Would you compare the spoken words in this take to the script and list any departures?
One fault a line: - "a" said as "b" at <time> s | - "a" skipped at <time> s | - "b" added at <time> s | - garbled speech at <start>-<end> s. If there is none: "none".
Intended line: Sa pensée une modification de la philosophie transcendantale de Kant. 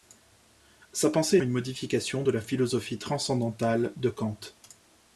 none